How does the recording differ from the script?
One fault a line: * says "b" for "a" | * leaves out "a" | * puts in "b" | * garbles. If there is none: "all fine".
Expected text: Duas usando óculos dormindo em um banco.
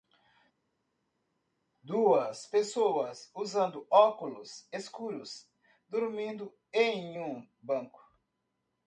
* puts in "pessoas"
* puts in "escuros"